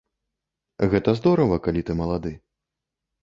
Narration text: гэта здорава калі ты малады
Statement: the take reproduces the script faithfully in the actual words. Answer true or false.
true